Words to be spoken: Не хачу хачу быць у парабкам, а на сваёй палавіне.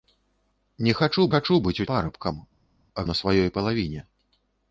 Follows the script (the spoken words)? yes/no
yes